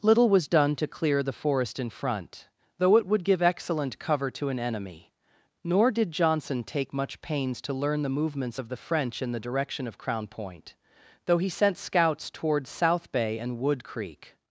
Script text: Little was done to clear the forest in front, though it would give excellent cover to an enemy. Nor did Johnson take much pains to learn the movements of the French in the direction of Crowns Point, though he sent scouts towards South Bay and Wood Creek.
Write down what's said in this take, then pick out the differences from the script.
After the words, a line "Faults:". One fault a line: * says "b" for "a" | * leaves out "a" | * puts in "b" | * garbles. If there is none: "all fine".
Little was done to clear the forest in front, though it would give excellent cover to an enemy. Nor did Johnson take much pains to learn the movements of the French in the direction of Crown Point, though he sent scouts towards South Bay and Wood Creek.
Faults:
* says "Crown" for "Crowns"